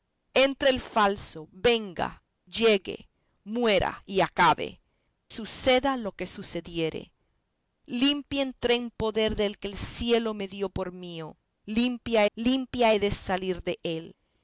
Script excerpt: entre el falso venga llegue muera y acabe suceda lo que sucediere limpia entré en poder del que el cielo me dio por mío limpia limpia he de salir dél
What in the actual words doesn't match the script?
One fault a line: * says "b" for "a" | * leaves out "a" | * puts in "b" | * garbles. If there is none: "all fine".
all fine